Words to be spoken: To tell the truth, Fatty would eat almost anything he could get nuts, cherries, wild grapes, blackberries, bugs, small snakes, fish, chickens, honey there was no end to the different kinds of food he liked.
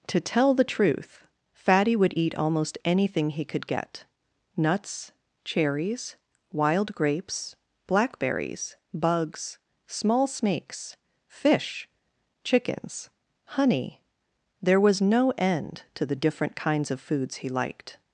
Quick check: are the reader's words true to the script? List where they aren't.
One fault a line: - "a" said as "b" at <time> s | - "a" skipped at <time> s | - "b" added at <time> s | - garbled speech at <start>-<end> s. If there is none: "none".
- "food" said as "foods" at 17.0 s